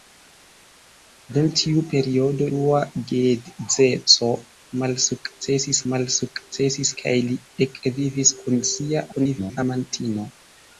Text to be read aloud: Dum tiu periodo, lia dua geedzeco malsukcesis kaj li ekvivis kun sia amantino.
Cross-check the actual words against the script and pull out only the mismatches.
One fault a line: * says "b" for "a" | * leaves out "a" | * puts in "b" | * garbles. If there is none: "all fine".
* leaves out "lia"
* puts in "malsukcesis"
* garbles